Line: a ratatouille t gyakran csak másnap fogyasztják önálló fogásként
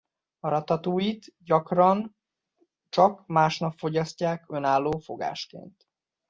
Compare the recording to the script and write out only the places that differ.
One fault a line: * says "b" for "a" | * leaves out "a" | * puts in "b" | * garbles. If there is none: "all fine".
all fine